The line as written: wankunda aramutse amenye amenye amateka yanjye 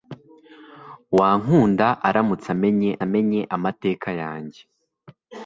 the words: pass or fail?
pass